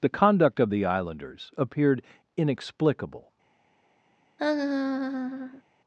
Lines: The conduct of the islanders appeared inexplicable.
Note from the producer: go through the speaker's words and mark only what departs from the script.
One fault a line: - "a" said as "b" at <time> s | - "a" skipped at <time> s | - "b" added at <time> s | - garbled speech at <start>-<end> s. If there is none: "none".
none